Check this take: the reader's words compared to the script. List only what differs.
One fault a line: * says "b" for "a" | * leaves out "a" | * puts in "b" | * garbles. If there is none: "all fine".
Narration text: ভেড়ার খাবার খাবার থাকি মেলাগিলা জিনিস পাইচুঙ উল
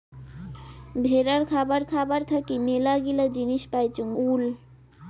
all fine